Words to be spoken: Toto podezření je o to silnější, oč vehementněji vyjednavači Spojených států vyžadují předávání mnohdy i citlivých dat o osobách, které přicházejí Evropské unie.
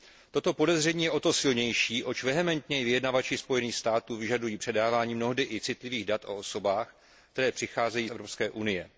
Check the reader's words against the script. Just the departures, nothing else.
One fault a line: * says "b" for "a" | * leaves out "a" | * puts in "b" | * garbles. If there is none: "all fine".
all fine